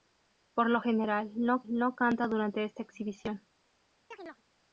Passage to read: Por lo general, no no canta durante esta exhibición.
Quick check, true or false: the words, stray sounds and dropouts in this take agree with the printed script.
false